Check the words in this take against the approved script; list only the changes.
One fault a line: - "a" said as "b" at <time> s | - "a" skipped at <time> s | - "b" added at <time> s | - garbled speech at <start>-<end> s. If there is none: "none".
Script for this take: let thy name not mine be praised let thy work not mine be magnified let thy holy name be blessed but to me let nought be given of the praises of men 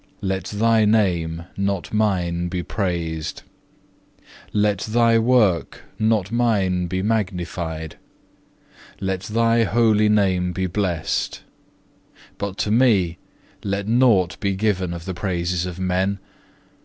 none